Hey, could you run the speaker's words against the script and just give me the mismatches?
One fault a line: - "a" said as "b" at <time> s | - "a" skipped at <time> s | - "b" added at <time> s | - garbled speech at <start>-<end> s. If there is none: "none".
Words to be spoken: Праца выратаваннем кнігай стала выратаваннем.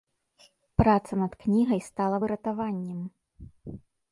- "выратаваннем" said as "над" at 1.2 s